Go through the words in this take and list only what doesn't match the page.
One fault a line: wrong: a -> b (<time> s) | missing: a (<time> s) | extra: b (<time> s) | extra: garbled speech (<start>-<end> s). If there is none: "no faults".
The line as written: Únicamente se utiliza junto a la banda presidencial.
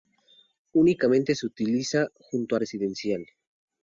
missing: la banda (2.6 s)